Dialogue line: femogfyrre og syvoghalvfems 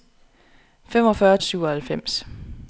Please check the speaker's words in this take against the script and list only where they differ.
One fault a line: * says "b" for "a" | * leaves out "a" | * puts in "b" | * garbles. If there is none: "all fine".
all fine